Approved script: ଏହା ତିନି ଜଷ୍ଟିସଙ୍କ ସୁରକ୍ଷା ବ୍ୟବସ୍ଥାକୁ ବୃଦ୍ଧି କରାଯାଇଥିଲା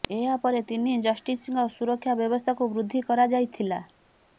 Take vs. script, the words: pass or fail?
fail